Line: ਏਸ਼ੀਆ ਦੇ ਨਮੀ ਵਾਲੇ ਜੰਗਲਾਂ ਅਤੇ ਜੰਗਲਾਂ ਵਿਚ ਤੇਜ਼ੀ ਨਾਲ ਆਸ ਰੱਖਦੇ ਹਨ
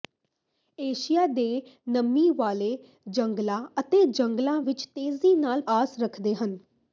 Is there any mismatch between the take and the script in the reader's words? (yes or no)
no